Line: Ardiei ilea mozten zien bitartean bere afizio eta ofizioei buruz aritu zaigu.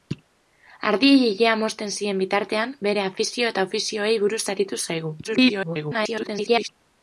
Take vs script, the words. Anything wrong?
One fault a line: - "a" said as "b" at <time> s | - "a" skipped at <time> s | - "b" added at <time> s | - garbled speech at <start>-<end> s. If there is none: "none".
- garbled speech at 5.2-6.7 s